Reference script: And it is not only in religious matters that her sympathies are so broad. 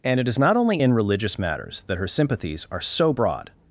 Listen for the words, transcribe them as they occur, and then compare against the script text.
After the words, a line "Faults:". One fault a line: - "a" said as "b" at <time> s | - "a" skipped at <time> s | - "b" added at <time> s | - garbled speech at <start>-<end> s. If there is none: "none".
And it is not only in religious matters that her sympathies are so broad.
Faults:
none